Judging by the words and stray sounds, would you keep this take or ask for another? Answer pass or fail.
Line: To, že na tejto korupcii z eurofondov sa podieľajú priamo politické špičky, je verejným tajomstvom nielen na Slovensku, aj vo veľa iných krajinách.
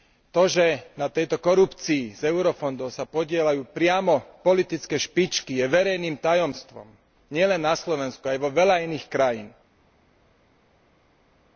pass